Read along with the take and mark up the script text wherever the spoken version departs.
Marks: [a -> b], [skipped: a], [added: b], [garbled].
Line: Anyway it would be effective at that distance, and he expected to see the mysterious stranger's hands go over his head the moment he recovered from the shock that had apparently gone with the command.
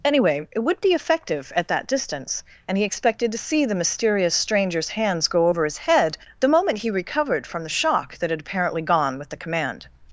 Anyway it would be effective at that distance, and he expected to see the mysterious stranger's hands go over his head the moment he recovered from the shock that had apparently gone with the command.